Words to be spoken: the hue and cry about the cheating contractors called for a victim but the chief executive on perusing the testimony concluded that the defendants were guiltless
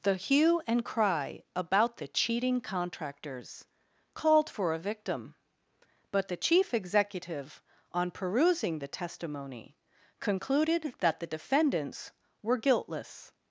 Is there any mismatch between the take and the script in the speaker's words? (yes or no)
no